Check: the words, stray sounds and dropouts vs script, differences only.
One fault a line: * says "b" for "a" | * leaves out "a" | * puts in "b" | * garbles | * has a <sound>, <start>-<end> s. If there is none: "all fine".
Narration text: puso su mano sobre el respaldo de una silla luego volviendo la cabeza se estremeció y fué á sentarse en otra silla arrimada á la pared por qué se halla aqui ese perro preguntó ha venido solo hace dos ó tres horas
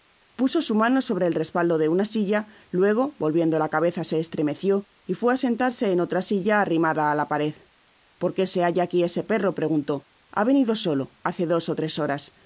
all fine